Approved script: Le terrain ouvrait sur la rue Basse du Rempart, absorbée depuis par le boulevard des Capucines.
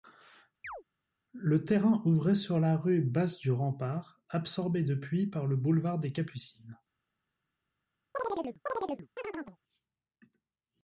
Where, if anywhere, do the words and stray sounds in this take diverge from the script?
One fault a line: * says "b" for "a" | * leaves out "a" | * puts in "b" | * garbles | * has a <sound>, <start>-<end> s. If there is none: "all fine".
* has a chirp, 0.6-0.8 s
* has a chirp, 8.1-9.6 s